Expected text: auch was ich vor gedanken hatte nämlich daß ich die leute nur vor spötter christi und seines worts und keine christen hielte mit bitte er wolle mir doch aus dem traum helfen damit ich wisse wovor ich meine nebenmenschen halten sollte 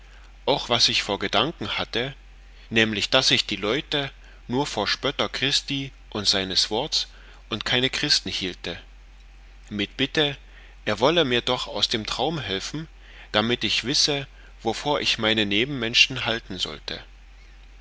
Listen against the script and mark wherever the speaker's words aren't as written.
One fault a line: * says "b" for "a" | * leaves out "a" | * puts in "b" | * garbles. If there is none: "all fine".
all fine